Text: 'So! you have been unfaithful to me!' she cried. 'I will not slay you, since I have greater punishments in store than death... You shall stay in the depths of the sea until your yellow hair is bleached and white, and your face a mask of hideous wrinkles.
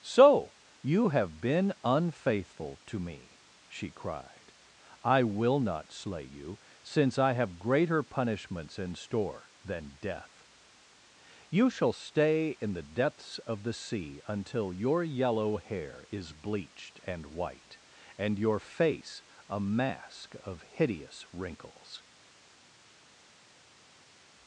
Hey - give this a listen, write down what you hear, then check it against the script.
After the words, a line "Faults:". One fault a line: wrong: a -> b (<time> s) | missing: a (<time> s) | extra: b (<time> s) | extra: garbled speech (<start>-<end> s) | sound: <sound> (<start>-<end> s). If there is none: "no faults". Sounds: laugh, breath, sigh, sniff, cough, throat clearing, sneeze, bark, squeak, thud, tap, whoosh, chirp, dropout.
'So! you have been unfaithful to me!' she cried. 'I will not slay you, since I have greater punishments in store than death... You shall stay in the depths of the sea until your yellow hair is bleached and white, and your face a mask of hideous wrinkles.
Faults:
no faults